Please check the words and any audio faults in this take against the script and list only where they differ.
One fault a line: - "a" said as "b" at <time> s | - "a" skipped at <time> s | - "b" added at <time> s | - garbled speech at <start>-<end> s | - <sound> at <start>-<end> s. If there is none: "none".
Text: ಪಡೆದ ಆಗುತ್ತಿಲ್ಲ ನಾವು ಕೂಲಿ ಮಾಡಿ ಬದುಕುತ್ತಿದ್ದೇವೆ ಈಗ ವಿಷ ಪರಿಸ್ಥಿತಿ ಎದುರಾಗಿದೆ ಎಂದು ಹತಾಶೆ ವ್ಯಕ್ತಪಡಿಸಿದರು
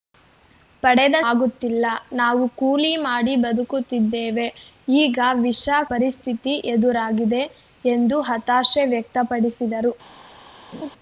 - laugh at 10.7-10.9 s